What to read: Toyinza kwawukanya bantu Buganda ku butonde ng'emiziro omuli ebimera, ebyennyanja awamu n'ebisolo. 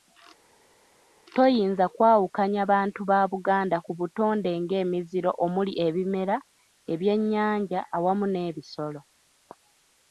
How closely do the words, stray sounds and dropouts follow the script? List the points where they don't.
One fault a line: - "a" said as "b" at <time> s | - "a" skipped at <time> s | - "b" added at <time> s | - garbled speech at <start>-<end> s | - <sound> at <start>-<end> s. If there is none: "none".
- "ba" added at 3.1 s